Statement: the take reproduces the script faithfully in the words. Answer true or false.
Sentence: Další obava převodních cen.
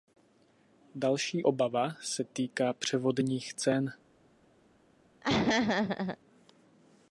false